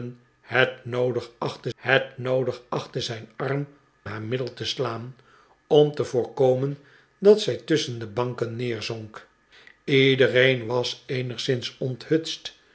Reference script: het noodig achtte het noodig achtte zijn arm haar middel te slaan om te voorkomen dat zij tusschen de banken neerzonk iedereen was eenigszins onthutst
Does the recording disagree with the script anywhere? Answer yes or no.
no